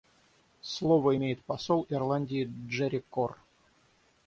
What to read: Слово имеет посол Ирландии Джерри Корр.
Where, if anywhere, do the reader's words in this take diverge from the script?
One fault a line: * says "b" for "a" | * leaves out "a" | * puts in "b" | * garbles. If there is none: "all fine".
all fine